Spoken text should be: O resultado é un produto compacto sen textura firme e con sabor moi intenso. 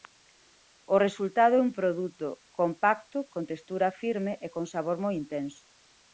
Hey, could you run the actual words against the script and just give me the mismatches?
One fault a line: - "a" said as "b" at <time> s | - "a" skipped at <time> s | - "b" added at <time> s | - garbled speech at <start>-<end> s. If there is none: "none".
- "sen" said as "con" at 3.3 s